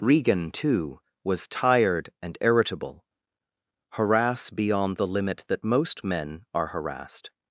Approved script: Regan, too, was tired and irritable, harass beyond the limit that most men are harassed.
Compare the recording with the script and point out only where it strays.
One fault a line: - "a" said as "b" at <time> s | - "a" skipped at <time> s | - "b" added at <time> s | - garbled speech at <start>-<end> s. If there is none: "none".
none